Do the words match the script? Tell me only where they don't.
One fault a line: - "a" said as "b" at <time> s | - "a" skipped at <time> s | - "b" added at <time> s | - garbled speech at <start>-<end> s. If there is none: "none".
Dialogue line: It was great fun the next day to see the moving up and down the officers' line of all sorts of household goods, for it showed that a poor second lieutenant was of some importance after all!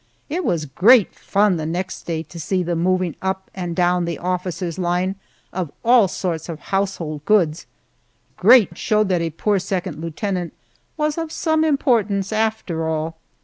- "for" said as "great" at 8.3 s